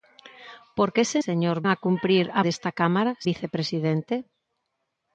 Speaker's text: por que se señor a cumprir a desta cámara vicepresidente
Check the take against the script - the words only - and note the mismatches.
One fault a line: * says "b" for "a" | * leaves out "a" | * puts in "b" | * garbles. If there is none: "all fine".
all fine